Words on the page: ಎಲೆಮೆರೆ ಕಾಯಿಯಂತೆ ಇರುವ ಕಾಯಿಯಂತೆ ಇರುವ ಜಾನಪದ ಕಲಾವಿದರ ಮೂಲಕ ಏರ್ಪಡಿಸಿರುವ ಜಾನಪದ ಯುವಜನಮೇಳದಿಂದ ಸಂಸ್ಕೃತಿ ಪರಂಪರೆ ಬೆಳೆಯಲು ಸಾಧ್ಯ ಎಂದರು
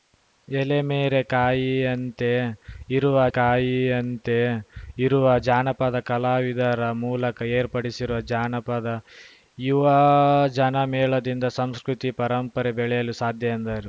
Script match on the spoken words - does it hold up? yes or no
yes